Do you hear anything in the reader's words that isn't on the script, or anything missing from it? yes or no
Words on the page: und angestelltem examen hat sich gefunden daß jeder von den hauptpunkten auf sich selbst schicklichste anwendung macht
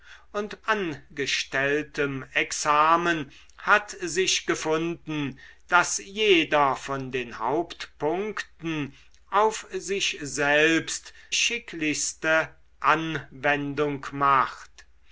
no